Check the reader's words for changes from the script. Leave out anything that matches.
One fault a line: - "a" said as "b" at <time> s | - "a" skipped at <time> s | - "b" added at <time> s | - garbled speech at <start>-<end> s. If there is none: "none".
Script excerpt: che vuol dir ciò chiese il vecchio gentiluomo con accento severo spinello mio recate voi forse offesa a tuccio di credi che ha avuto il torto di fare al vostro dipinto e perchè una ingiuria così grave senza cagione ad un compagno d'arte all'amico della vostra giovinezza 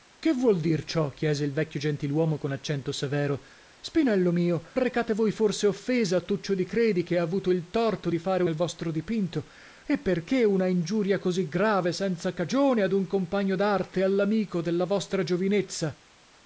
none